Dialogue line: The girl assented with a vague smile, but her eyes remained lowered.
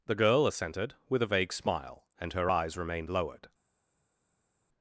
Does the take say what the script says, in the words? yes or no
no